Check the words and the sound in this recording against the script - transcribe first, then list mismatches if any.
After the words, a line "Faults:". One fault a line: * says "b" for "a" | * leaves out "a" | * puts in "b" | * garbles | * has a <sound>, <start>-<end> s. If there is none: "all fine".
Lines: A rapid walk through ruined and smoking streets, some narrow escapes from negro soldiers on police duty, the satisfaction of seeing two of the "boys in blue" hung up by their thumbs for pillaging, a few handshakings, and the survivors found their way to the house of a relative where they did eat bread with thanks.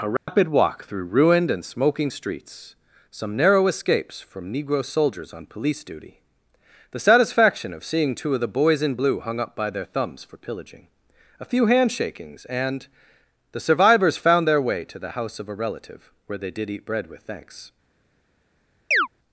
A rapid walk through ruined and smoking streets, some narrow escapes from negro soldiers on police duty, the satisfaction of seeing two of the "boys in blue" hung up by their thumbs for pillaging, a few handshakings, and the survivors found their way to the house of a relative where they did eat bread with thanks.
Faults:
* has a dropout, 0.2-0.3 s
* has a chirp, 18.9-19.1 s